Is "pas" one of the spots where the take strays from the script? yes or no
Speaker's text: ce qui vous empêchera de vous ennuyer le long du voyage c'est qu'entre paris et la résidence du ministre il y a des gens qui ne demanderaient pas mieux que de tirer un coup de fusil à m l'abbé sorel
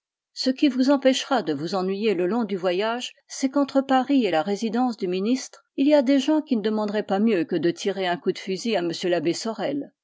no